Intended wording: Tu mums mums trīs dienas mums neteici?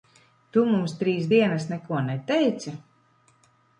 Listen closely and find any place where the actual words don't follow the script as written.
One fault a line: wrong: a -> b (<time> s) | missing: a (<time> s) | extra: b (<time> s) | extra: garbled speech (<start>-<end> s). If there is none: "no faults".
missing: mums (0.9 s)
wrong: mums -> neko (1.7 s)